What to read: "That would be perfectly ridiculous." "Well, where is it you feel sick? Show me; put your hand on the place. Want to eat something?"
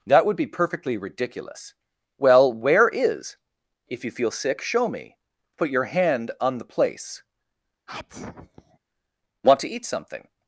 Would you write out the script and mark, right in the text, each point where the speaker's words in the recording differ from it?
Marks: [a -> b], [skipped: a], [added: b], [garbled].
"That would be perfectly ridiculous." "Well, where is [it -> if] you feel sick? Show me; put your hand on the place. Want to eat something?"